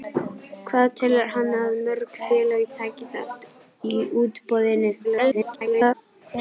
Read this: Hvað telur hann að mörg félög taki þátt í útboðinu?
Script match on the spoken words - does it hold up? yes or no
no